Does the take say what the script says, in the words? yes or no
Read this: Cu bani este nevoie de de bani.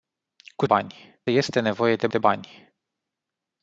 yes